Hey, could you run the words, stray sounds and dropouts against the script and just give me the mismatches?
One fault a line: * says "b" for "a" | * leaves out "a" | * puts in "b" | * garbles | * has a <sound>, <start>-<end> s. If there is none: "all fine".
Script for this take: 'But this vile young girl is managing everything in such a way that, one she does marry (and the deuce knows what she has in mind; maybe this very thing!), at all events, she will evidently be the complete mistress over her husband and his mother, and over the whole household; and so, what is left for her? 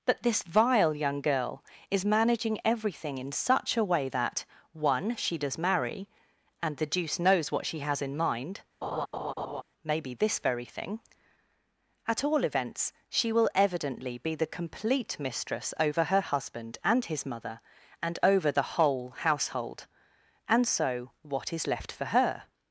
* has a laugh, 8.8-9.6 s